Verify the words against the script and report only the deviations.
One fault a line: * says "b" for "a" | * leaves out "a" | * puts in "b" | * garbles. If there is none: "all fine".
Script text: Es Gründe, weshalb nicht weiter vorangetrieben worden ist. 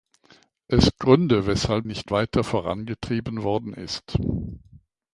all fine